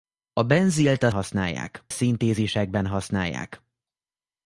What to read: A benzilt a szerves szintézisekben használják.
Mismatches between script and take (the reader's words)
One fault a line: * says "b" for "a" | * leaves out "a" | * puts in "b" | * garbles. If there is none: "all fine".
* says "használják" for "szerves"